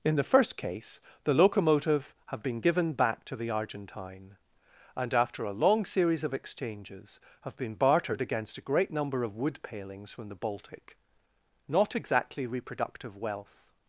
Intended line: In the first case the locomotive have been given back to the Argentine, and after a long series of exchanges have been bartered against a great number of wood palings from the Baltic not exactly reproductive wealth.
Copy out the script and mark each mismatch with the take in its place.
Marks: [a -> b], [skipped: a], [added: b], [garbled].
In the first case the locomotive have been given back to the Argentine, and after a long series of exchanges have been bartered against a great number of wood palings from the Baltic not exactly reproductive wealth.